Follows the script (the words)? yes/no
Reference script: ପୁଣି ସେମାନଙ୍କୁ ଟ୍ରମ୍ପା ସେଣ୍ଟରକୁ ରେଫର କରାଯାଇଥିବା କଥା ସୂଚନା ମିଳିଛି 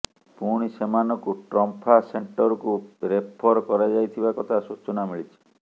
yes